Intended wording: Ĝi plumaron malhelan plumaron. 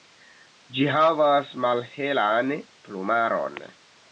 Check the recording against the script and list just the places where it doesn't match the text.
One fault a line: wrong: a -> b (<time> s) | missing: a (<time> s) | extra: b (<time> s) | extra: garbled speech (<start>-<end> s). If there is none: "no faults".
wrong: plumaron -> havas (0.9 s)